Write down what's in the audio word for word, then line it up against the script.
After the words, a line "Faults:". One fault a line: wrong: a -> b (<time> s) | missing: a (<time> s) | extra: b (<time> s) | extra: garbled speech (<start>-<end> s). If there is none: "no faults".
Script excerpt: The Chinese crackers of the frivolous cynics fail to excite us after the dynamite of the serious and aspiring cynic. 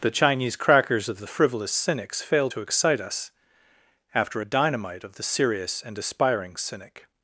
The Chinese crackers of the frivolous cynics fail to excite us after a dynamite of the serious and aspiring cynic.
Faults:
wrong: the -> a (4.4 s)